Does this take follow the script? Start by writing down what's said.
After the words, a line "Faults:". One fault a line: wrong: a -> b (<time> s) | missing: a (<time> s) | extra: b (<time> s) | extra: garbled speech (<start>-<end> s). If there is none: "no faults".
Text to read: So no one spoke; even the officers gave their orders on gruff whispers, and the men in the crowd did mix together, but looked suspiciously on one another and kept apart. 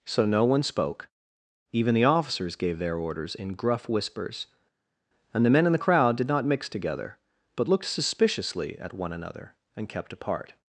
So no one spoke; even the officers gave their orders in gruff whispers, and the men in the crowd did not mix together, but looked suspiciously at one another and kept apart.
Faults:
wrong: on -> in (3.4 s)
extra: not (6.3 s)
wrong: on -> at (8.8 s)